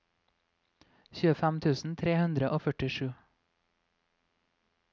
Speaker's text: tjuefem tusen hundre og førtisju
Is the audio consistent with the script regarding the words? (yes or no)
no